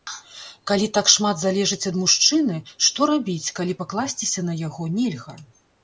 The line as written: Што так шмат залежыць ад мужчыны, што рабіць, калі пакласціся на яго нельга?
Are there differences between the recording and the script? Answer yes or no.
yes